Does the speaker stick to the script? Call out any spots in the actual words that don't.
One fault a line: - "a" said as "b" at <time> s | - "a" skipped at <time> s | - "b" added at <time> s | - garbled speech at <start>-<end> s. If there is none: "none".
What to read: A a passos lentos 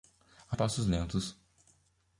none